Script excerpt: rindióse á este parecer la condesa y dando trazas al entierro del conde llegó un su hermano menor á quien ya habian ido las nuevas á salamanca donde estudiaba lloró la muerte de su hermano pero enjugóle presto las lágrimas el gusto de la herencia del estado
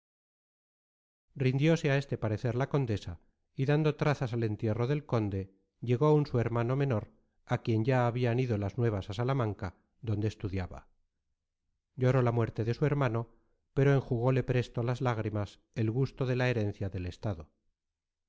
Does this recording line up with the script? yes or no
yes